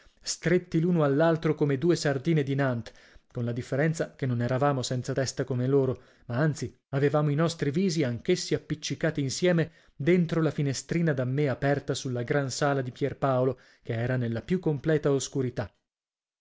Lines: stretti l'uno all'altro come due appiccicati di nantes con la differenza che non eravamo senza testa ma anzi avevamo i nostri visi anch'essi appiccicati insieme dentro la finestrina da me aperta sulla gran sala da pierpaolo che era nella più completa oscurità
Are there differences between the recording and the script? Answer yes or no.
yes